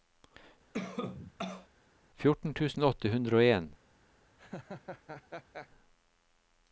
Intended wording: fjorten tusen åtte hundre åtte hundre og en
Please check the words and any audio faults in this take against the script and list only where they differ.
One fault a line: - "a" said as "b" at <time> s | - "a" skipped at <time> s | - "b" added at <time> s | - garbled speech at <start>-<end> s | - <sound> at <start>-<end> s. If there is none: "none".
- cough at 0.7-1.7 s
- "åtte hundre" skipped at 3.4 s
- laugh at 4.4-5.7 s